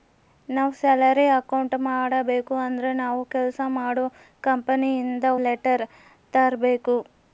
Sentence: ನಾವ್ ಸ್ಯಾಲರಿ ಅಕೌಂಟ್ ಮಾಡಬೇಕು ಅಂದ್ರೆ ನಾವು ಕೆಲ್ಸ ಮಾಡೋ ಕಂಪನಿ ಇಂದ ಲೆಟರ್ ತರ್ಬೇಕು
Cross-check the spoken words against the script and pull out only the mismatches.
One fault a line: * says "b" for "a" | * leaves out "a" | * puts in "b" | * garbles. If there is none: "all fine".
all fine